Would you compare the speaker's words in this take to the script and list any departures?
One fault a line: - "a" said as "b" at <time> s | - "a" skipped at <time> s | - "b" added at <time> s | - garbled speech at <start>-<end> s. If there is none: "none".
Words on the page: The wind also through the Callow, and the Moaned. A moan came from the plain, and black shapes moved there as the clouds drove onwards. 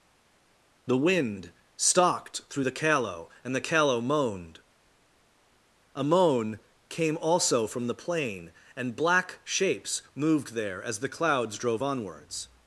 - "also" said as "stalked" at 1.8 s
- "Callow" added at 3.6 s
- "also" added at 7.2 s